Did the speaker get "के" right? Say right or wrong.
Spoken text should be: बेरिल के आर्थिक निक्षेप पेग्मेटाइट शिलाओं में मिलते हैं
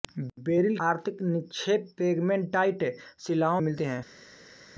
wrong